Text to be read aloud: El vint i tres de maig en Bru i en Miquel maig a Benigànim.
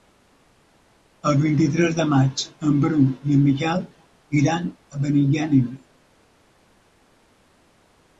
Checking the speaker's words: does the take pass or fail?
fail